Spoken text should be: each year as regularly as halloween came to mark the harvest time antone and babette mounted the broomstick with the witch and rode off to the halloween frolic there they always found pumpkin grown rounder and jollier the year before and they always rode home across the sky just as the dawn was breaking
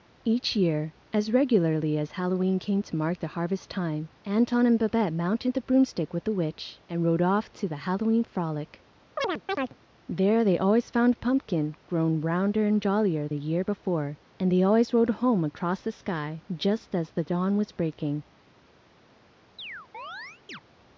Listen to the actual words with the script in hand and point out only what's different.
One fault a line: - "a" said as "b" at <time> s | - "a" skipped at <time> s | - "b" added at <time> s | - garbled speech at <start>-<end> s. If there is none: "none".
none